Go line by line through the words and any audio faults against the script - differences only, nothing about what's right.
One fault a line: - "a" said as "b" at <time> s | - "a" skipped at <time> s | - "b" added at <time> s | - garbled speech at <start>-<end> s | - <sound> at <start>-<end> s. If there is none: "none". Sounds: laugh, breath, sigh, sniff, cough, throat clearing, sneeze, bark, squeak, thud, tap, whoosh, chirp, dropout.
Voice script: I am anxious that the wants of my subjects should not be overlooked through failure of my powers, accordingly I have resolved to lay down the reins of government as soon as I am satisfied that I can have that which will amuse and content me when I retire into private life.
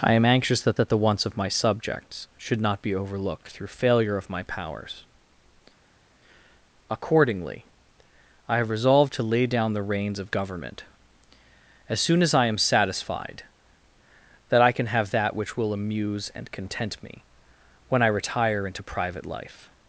- "that" added at 0.7 s